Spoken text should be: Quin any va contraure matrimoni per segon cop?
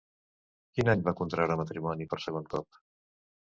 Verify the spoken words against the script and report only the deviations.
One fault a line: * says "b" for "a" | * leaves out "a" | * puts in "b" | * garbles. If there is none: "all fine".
all fine